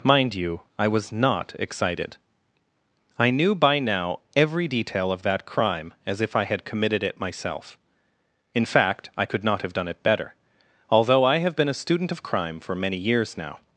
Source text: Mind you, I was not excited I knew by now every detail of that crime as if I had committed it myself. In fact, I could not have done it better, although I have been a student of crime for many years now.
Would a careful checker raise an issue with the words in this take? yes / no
no